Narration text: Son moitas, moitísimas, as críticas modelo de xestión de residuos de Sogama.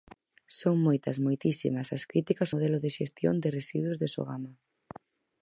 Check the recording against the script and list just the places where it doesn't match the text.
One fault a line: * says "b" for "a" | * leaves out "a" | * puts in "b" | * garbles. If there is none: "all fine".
all fine